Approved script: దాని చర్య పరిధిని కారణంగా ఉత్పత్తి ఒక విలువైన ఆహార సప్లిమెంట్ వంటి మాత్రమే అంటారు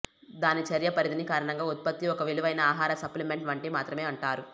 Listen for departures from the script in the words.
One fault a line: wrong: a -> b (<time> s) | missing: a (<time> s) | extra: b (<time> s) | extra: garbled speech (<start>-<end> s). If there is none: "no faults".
no faults